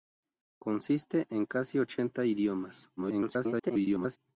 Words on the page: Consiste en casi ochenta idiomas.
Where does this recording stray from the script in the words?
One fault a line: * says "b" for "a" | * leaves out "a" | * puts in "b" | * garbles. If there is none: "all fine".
* garbles